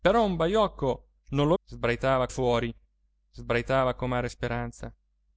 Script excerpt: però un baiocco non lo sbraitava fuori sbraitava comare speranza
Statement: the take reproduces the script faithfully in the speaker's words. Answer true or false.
true